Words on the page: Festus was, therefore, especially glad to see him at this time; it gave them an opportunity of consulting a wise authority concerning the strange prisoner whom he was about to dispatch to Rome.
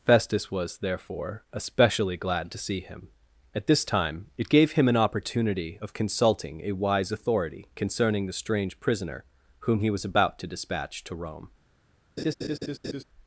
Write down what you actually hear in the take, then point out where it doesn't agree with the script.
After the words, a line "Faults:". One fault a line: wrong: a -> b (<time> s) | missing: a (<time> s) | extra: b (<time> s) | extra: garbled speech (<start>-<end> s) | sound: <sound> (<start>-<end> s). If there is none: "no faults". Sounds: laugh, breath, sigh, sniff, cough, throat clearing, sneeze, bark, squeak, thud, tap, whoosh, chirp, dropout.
Festus was, therefore, especially glad to see him at this time; it gave him an opportunity of consulting a wise authority concerning the strange prisoner whom he was about to dispatch to Rome.
Faults:
wrong: them -> him (4.7 s)
sound: laugh (12.2-13.0 s)